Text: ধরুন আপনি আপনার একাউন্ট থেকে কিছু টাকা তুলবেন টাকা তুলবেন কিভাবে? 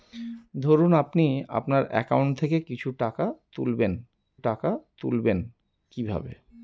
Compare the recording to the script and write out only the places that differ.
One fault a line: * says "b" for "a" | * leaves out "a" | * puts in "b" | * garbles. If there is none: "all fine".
all fine